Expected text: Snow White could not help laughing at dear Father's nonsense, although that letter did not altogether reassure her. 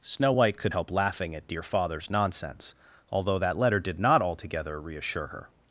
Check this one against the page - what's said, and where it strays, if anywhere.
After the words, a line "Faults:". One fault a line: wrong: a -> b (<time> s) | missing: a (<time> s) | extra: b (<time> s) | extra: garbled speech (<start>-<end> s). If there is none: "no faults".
Snow White could help laughing at dear Father's nonsense, although that letter did not altogether reassure her.
Faults:
missing: not (0.7 s)